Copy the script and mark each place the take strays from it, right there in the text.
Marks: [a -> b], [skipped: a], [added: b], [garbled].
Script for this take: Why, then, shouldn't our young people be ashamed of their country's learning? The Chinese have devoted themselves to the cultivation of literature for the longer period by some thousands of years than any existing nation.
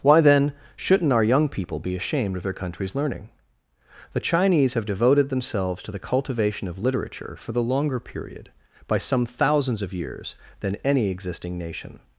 Why, then, shouldn't our young people be ashamed of their country's learning? The Chinese have devoted themselves to the cultivation of literature for the longer period by some thousands of years than any existing nation.